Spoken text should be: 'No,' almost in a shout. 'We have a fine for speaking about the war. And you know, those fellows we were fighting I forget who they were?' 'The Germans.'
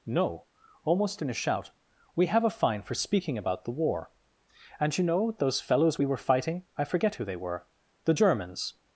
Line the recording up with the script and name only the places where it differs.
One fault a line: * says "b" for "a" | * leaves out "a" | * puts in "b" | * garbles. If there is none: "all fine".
all fine